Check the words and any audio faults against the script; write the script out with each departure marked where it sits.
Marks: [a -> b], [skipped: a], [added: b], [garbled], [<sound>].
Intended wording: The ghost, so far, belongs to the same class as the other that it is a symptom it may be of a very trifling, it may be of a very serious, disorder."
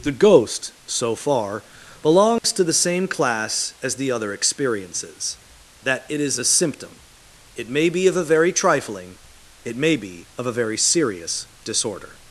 The ghost, so far, belongs [dropout] to the same class as the other [added: experiences] that it is a symptom it may be of a very trifling, it may be of a very serious, disorder."